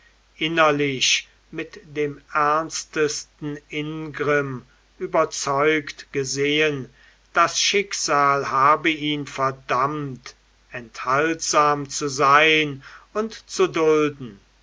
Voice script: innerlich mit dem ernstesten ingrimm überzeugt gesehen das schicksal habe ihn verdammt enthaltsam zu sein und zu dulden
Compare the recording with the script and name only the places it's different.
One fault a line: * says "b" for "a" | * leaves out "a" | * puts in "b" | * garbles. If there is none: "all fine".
all fine